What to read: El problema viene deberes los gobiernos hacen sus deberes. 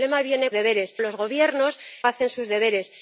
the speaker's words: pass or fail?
pass